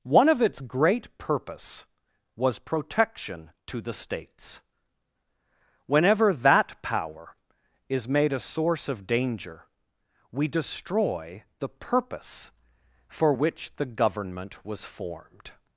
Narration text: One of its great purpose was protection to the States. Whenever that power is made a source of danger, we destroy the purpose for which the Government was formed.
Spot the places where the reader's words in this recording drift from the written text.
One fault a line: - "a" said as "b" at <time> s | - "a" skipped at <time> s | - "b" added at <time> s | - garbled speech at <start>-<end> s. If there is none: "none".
none